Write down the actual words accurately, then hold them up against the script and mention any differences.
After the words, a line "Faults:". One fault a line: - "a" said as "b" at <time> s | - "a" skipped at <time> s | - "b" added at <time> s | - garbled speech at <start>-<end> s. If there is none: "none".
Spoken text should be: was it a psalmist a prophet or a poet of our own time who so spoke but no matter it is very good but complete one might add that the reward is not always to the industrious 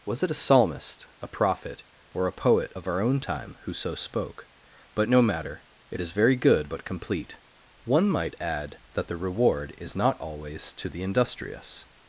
was it a psalmist a prophet or a poet of our own time who so spoke but no matter it is very good but complete one might add that the reward is not always to the industrious
Faults:
none